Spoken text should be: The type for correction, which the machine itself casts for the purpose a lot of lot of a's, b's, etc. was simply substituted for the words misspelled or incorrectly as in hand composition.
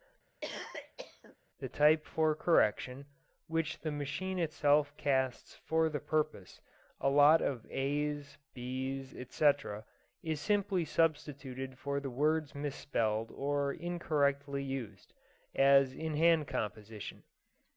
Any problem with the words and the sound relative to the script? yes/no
yes